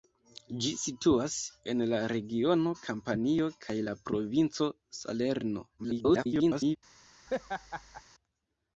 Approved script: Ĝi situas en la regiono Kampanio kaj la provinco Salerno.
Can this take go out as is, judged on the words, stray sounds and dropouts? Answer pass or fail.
fail